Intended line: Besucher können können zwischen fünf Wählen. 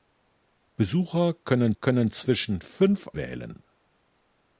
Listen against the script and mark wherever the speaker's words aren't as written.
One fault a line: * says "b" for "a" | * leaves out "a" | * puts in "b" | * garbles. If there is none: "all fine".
all fine